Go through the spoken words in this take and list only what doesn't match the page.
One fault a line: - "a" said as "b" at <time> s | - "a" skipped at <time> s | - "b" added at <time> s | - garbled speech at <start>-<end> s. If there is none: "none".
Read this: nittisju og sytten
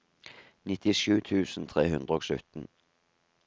- "tusen tre hundre" added at 1.3 s